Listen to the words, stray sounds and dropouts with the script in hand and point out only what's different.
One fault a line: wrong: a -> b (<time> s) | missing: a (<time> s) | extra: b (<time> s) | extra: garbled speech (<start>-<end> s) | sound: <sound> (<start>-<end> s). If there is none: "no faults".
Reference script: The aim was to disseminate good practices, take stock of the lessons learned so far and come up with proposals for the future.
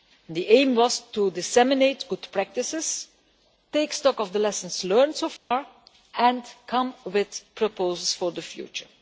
sound: dropout (5.4-5.5 s)
missing: up (7.0 s)